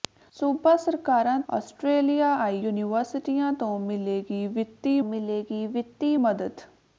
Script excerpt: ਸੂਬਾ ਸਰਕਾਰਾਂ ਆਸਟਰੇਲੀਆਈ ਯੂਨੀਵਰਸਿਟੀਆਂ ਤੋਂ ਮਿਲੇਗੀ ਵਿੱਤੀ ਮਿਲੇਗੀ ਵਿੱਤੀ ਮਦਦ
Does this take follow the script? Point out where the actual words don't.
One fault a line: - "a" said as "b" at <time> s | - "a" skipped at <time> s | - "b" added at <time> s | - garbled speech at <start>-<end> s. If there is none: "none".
none